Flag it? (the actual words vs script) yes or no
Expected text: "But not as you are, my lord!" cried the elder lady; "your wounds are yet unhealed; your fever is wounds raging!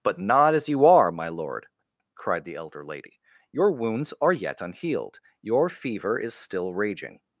yes